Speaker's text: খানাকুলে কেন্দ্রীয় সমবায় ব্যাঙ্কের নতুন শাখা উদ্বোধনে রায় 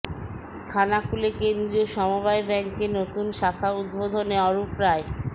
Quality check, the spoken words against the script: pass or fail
fail